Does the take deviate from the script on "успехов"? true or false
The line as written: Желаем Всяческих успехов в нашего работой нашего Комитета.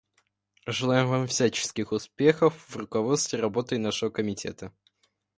false